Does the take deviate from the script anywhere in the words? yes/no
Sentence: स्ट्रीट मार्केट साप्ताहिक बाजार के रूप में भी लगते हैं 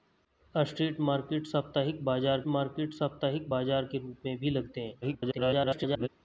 yes